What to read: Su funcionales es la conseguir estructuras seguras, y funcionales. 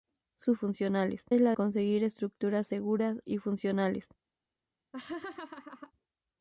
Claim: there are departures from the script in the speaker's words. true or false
false